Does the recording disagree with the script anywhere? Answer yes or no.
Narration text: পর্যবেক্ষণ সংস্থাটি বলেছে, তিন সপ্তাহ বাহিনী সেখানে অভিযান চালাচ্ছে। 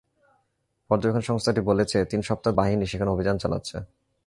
no